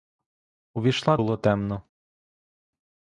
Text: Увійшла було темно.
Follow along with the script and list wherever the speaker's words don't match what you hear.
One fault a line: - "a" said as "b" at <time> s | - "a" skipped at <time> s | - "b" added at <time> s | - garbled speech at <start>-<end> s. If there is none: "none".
none